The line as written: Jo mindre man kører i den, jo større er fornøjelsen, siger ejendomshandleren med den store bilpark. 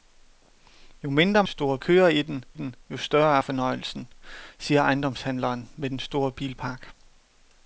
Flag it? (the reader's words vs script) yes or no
yes